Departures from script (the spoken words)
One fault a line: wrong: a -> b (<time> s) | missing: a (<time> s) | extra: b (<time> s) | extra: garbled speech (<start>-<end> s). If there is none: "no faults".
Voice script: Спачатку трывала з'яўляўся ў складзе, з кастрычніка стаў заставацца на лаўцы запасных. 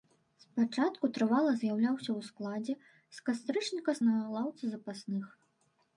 missing: стаў заставацца (4.0 s)